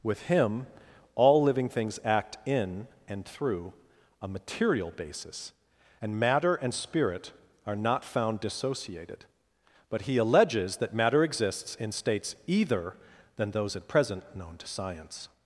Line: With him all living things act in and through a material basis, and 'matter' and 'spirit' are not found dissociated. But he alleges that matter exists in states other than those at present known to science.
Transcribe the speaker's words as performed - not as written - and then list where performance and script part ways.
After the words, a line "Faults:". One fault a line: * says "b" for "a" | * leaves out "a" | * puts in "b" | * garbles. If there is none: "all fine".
With him all living things act in and through a material basis, and 'matter' and 'spirit' are not found dissociated. But he alleges that matter exists in states either than those at present known to science.
Faults:
* says "either" for "other"